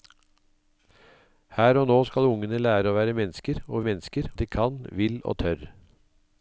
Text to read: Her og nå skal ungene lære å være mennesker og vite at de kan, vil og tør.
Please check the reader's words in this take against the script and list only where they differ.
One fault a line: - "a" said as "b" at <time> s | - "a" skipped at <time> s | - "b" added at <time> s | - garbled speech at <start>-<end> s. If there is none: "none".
- "vite" said as "mennesker" at 3.9 s